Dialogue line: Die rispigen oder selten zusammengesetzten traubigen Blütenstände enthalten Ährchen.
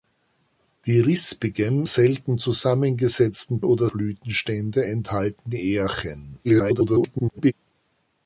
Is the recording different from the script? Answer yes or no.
yes